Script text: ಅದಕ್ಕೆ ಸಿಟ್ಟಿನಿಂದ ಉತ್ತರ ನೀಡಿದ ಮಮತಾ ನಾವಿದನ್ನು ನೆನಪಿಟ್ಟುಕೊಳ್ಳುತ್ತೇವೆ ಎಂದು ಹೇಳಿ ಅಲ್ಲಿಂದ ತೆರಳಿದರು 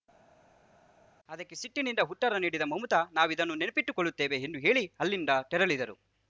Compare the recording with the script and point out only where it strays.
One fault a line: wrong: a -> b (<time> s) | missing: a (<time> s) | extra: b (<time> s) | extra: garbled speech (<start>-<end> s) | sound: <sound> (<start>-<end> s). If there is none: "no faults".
no faults